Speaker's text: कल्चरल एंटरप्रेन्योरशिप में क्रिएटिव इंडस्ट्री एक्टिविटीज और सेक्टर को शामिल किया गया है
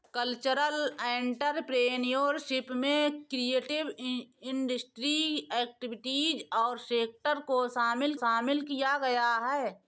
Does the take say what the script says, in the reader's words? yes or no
no